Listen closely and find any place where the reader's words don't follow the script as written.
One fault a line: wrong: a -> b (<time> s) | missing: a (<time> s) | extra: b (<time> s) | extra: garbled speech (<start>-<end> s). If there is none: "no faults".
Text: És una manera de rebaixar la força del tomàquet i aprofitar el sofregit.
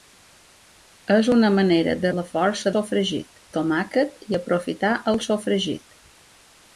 missing: rebaixar (2.1 s)
wrong: del -> sofregit (2.7 s)